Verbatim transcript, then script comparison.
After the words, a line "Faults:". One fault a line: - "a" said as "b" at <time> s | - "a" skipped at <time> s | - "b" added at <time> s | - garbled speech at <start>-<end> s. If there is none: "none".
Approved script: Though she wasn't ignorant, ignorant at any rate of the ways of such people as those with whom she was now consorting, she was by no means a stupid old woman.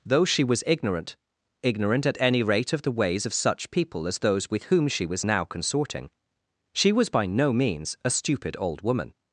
Though she was ignorant, ignorant at any rate of the ways of such people as those with whom she was now consorting, she was by no means a stupid old woman.
Faults:
- "wasn't" said as "was" at 0.4 s